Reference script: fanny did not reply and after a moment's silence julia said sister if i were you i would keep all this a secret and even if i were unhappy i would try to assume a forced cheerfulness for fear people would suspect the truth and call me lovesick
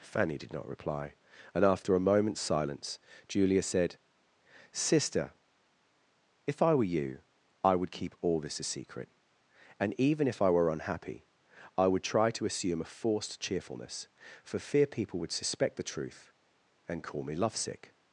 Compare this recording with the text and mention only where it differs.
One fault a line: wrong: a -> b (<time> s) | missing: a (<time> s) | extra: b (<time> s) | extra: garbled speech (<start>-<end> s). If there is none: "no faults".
no faults